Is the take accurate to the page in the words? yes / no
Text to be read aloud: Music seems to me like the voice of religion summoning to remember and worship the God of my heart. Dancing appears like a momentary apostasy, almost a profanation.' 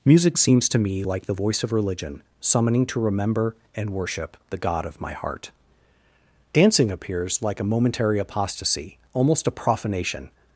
yes